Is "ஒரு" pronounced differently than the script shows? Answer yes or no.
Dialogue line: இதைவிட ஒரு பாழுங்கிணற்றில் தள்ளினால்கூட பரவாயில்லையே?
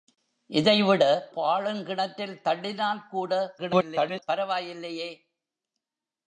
yes